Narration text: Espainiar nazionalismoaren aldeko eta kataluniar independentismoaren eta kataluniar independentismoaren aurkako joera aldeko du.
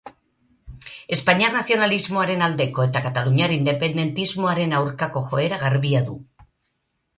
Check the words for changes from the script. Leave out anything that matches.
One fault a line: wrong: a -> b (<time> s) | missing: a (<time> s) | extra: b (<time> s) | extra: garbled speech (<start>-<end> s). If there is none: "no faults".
missing: eta kataluniar independentismoaren (4.8 s)
wrong: aldeko -> garbia (5.7 s)